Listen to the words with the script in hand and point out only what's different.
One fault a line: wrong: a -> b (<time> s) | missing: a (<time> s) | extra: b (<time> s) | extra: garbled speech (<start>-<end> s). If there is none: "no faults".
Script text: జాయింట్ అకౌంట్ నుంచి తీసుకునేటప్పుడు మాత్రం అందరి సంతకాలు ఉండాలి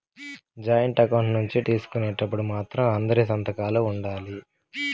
no faults